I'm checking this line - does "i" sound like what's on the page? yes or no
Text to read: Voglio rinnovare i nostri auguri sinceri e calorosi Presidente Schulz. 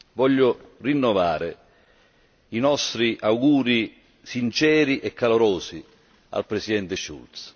yes